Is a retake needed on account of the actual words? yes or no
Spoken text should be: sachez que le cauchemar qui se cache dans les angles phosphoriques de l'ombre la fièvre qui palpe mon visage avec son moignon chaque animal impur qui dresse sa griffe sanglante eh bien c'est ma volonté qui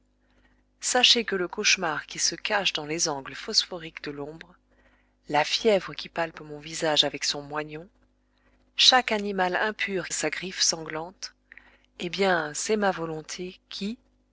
yes